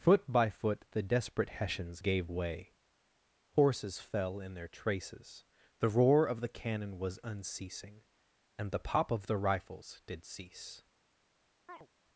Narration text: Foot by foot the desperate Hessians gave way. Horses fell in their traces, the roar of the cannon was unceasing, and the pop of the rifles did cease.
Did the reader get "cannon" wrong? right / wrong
right